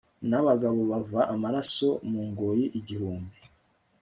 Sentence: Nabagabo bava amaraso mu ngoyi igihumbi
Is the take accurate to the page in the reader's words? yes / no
yes